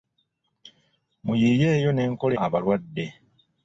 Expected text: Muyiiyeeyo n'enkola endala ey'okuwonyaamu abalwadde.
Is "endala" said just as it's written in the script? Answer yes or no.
no